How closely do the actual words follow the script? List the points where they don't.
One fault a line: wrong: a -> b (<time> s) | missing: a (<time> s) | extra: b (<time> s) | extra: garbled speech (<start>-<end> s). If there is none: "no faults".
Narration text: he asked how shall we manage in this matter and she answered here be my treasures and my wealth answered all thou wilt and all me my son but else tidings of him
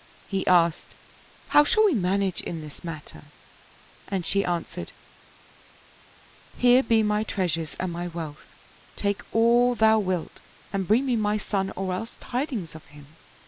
wrong: answered -> take (9.0 s)
wrong: all -> bring (10.9 s)
wrong: but -> or (11.8 s)